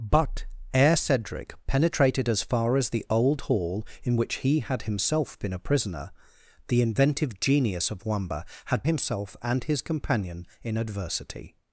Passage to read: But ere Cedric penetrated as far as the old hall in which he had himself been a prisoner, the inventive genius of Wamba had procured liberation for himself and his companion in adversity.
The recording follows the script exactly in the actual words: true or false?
false